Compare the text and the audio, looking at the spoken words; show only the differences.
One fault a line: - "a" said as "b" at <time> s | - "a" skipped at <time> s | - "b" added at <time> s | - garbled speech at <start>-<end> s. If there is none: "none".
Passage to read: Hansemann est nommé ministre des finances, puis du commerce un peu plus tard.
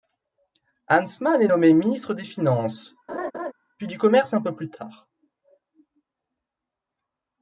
none